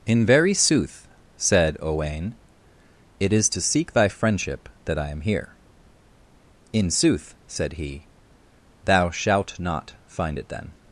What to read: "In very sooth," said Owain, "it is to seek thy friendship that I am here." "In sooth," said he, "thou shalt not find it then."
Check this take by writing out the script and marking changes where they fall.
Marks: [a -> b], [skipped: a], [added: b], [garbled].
"In very sooth," said Owain, "it is to seek thy friendship that I am here." "In sooth," said he, "thou shalt not find it then."